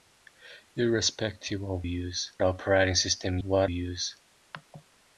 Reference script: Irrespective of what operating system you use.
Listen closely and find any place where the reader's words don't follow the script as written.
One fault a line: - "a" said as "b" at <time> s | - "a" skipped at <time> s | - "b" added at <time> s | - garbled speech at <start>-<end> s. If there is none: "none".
- "what" said as "use" at 1.8 s
- "you" said as "what" at 3.4 s